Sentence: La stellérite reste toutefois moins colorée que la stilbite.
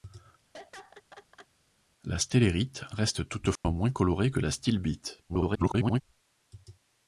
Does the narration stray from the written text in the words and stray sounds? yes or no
yes